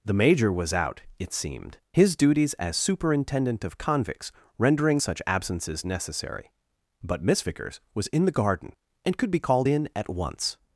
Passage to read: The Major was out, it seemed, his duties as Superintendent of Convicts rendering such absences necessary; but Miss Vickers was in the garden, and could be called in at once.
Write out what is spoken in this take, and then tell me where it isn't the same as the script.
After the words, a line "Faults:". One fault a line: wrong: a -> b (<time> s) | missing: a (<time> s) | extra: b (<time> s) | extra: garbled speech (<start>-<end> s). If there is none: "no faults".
The Major was out, it seemed, his duties as Superintendent of Convicts rendering such absences necessary; but Miss Vickers was in the garden, and could be called in at once.
Faults:
no faults